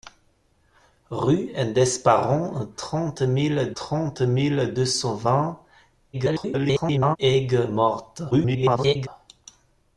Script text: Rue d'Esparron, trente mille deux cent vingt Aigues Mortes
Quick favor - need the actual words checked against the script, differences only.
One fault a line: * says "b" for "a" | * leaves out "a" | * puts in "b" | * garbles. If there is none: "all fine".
* puts in "trente mille"
* garbles
* garbles